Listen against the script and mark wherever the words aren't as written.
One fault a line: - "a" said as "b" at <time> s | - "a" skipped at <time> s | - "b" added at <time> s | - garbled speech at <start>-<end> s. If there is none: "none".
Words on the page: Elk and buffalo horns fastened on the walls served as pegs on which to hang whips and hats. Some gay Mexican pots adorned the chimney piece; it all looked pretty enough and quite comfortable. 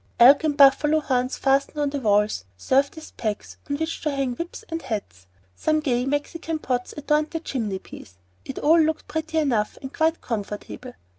none